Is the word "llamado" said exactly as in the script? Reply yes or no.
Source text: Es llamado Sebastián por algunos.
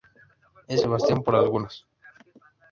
no